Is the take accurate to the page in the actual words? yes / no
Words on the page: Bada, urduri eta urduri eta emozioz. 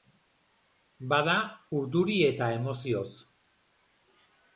no